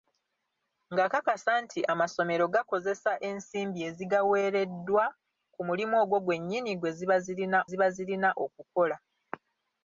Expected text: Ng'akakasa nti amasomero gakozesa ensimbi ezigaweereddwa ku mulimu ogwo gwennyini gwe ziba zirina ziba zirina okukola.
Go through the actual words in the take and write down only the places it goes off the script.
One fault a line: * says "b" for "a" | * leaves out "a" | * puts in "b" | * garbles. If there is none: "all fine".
all fine